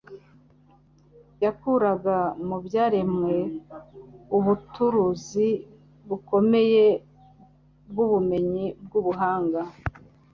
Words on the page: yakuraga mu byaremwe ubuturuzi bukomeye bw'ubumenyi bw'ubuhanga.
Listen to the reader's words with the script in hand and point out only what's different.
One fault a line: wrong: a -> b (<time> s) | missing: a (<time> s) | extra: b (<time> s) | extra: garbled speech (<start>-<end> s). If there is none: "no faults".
no faults